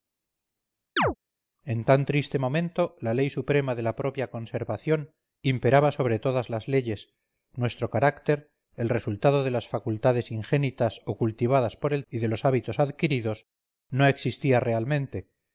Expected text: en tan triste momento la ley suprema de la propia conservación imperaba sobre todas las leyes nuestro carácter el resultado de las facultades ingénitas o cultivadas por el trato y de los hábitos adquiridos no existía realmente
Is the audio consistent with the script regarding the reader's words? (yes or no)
no